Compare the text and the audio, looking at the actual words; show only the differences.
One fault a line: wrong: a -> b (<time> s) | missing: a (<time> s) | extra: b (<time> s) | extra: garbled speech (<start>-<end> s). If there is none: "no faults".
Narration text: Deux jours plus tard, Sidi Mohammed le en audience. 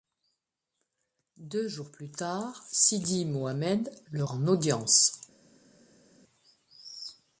no faults